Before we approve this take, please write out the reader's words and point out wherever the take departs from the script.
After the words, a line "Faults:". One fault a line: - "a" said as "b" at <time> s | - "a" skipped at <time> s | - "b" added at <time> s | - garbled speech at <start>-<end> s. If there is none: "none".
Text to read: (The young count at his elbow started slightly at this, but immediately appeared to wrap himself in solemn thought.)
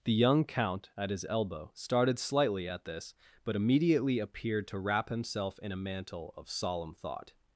(The young count at his elbow started slightly at this, but immediately appeared to wrap himself in a mantle of solemn thought.)
Faults:
- "a mantle of" added at 5.7 s